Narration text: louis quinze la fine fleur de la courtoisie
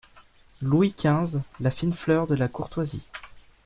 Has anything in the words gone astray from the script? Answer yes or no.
no